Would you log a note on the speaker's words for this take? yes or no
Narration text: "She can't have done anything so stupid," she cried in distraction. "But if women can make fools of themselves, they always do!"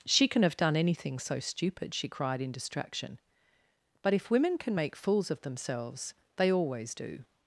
yes